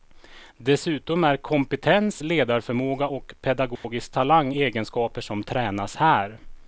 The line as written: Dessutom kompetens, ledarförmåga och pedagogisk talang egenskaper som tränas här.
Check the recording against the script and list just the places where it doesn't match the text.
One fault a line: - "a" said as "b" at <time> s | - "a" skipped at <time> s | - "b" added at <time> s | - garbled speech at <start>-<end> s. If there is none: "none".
- "är" added at 1.2 s